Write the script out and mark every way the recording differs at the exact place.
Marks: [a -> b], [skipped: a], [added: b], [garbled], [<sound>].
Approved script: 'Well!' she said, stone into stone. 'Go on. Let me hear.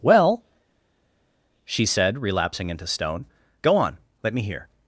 'Well!' she said, [stone -> relapsing] into stone. 'Go on. Let me hear.